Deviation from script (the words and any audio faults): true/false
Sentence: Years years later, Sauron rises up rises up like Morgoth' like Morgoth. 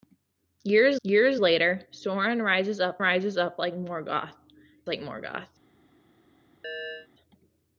true